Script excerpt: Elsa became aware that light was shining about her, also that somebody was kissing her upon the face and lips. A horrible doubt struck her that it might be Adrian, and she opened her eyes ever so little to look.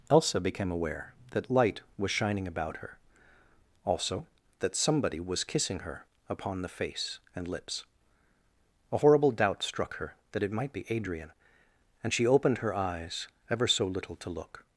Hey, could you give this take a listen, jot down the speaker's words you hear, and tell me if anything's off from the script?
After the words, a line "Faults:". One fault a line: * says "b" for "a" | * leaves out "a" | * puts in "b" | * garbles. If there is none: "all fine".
Elsa became aware that light was shining about her, also that somebody was kissing her upon the face and lips. A horrible doubt struck her that it might be Adrian, and she opened her eyes ever so little to look.
Faults:
all fine